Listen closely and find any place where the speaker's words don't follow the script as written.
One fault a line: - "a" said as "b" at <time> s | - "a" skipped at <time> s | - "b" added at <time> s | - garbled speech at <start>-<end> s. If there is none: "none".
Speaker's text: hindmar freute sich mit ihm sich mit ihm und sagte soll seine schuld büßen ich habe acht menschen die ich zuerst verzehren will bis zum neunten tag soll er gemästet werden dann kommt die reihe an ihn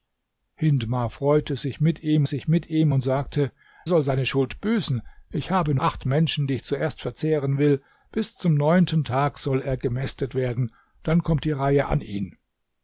none